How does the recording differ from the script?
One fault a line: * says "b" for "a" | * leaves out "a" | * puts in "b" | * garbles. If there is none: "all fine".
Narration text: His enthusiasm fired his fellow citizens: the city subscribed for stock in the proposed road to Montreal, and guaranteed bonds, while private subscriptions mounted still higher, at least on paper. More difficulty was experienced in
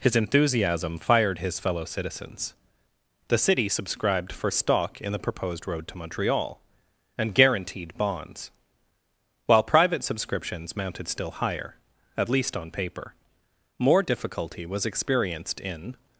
all fine